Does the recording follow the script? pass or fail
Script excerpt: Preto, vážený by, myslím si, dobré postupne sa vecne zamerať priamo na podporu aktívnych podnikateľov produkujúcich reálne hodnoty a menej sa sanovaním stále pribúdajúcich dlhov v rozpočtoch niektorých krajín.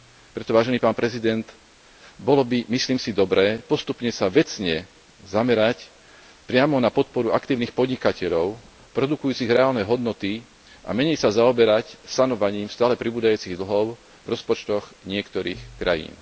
fail